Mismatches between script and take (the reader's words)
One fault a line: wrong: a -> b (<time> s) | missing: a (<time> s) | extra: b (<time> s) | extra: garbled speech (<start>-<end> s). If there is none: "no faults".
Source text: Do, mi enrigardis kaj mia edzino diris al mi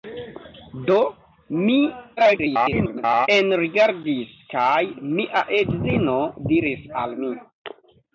extra: garbled speech (2.2-3.3 s)